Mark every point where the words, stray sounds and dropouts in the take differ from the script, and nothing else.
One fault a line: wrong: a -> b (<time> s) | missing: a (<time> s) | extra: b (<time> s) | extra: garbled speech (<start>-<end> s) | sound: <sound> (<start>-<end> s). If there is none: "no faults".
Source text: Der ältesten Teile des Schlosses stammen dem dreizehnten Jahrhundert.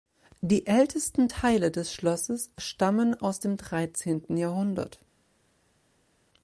wrong: Der -> Die (0.4 s)
extra: aus (3.2 s)